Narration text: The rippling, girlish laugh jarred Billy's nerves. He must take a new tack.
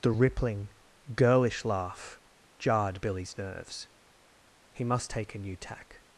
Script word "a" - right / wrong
right